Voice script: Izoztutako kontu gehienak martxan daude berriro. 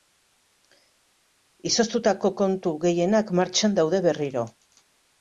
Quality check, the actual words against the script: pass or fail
pass